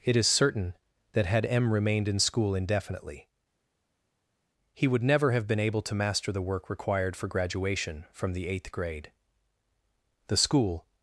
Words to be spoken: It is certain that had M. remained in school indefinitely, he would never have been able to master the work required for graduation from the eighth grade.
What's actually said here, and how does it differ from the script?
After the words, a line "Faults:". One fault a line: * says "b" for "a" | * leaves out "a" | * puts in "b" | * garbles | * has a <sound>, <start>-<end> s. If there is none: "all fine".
It is certain that had M. remained in school indefinitely, he would never have been able to master the work required for graduation from the eighth grade. The school
Faults:
* puts in "The school"